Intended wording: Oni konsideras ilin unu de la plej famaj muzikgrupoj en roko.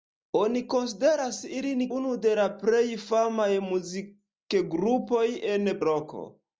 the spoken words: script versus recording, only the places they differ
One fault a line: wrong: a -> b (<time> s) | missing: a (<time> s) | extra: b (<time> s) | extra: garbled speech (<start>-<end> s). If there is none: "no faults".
no faults